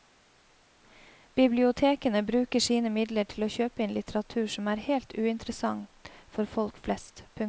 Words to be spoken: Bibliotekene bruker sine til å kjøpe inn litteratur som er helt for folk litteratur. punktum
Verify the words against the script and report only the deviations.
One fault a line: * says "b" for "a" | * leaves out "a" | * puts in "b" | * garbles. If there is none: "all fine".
* puts in "midler"
* puts in "uinteressant"
* says "flest" for "litteratur"